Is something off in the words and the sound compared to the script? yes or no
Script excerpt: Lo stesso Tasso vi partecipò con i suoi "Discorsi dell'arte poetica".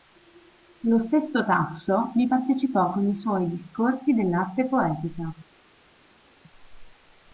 no